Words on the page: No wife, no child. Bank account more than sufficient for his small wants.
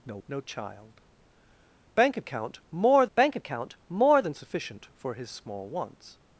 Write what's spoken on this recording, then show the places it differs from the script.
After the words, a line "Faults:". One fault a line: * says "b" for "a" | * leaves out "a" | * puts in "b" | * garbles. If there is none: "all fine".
No no child. Bank account more bank account more than sufficient for his small wants.
Faults:
* leaves out "wife"
* puts in "bank account more"